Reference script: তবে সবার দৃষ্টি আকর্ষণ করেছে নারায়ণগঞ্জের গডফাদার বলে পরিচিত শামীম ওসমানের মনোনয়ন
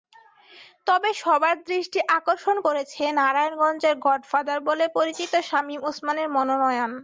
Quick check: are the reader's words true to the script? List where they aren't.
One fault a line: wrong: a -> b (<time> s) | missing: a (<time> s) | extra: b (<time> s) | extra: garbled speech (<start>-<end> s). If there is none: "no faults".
no faults